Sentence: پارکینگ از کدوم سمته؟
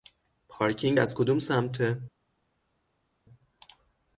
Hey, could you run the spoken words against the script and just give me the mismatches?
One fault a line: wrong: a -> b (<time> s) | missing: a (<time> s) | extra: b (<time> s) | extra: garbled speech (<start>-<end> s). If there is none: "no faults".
no faults